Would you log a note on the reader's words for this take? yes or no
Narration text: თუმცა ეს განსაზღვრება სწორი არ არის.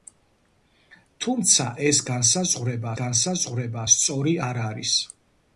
yes